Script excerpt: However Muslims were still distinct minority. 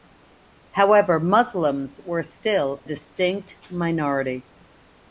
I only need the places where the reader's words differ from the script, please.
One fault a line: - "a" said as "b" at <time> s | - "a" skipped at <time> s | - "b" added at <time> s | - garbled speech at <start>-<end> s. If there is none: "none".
none